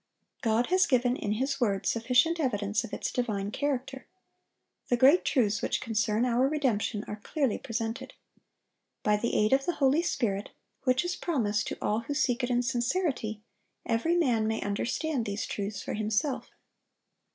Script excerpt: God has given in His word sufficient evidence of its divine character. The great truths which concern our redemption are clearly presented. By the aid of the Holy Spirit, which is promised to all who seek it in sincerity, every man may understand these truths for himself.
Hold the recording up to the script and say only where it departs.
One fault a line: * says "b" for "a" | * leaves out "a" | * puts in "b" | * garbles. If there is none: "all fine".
all fine